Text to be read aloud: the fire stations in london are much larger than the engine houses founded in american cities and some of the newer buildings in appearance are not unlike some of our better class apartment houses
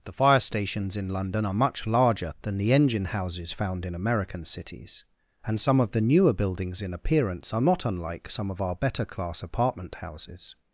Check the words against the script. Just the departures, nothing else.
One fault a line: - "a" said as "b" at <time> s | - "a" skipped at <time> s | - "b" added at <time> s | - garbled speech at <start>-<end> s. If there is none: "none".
- "founded" said as "found" at 3.5 s